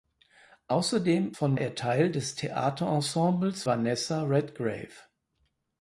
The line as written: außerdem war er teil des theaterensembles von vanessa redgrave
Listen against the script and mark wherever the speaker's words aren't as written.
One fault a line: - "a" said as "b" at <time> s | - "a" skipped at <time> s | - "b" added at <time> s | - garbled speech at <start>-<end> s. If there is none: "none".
- "war" said as "von" at 1.3 s
- "von" skipped at 3.6 s